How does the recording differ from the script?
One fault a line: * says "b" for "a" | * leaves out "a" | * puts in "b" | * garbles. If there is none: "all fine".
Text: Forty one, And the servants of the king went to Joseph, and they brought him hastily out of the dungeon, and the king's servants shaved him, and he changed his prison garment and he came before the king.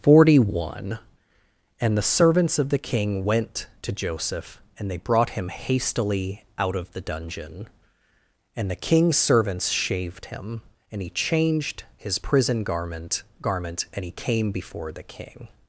* puts in "garment"